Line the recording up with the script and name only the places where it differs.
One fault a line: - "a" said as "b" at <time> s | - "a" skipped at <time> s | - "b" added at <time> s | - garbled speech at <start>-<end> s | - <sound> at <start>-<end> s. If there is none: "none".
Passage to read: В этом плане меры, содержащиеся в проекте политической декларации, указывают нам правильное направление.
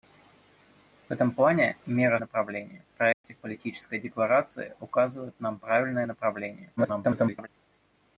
- "содержащиеся" said as "направление" at 2.2 s
- dropout at 3.1-3.2 s
- garbled speech at 6.8-7.5 s